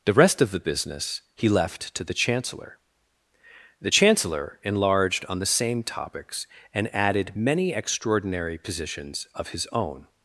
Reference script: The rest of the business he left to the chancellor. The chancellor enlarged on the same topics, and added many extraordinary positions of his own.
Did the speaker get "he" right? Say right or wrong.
right